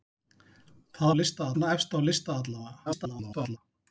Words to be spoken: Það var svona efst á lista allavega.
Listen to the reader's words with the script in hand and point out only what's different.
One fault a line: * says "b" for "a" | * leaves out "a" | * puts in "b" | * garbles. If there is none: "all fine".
* says "lista" for "var"
* garbles